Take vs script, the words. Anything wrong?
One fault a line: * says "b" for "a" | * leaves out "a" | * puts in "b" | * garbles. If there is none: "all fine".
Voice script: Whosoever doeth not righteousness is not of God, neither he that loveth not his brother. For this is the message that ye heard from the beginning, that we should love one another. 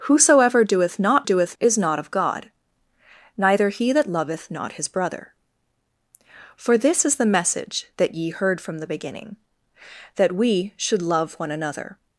* says "doeth" for "righteousness"